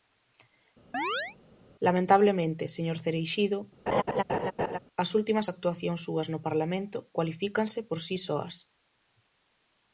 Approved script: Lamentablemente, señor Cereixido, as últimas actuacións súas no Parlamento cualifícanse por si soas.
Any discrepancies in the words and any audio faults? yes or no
yes